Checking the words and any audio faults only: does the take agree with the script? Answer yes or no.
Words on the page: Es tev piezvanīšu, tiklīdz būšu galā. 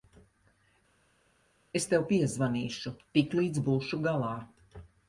yes